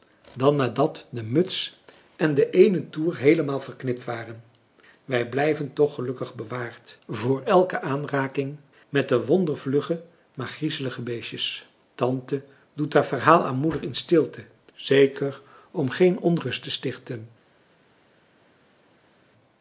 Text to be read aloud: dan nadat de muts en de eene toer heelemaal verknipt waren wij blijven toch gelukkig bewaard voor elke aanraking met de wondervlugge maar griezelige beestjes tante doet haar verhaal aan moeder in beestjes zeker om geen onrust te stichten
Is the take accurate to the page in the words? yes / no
no